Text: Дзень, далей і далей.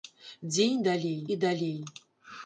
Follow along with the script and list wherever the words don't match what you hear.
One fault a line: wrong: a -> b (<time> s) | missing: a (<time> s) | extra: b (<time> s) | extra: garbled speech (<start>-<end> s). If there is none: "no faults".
no faults